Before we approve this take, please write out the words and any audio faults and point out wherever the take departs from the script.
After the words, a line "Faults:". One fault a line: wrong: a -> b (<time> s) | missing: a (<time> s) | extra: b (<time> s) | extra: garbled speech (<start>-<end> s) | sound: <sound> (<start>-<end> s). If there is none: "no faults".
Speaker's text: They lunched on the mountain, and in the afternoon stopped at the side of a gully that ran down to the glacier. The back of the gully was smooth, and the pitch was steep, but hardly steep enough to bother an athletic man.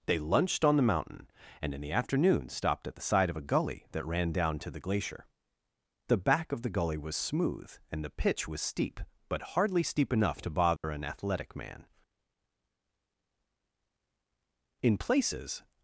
They lunched on the mountain, and in the afternoon stopped at the side of a gully that ran down to the glacier. The back of the gully was smooth, and the pitch was steep, but hardly steep enough to bother an athletic man. In places
Faults:
sound: dropout (10.8-10.8 s)
extra: In places (14.8 s)